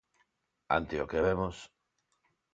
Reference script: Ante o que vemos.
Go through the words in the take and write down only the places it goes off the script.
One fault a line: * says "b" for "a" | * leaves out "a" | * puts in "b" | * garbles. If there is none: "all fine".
all fine